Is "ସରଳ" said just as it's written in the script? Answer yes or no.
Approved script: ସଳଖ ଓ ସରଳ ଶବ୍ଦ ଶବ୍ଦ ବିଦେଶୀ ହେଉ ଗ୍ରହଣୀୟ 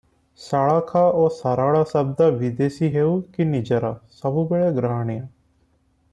yes